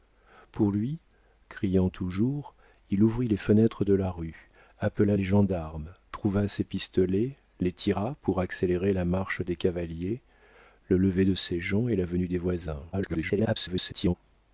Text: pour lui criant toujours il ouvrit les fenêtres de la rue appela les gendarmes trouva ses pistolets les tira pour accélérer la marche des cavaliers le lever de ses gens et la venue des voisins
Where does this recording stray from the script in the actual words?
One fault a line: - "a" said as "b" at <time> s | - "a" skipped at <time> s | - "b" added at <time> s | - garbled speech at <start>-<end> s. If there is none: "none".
- garbled speech at 12.9-14.1 s